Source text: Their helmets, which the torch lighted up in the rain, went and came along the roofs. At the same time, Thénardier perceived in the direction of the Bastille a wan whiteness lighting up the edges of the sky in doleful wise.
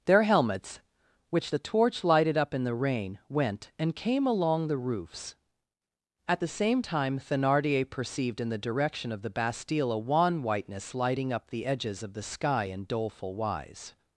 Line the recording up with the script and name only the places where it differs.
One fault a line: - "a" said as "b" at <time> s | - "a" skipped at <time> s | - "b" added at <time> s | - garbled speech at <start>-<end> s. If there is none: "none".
none